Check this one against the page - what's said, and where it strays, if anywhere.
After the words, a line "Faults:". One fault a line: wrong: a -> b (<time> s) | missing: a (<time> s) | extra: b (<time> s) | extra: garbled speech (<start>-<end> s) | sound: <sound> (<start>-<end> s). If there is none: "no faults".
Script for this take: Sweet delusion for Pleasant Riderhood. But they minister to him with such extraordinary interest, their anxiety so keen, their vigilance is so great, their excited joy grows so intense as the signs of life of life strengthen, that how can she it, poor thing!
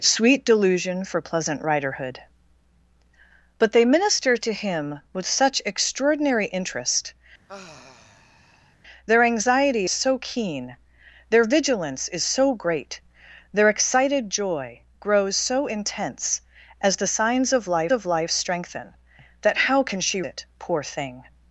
Sweet delusion for Pleasant Riderhood. But they minister to him with such extraordinary interest, their anxiety so keen, their vigilance is so great, their excited joy grows so intense as the signs of life of life strengthen, that how can she it, poor thing!
Faults:
sound: sigh (7.5-8.8 s)